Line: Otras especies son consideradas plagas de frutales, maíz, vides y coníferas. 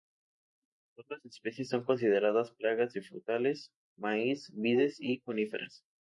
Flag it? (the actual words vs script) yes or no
no